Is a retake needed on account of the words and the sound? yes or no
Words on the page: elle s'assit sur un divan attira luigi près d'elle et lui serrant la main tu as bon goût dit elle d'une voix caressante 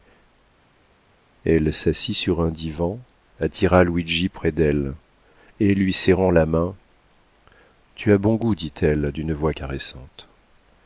no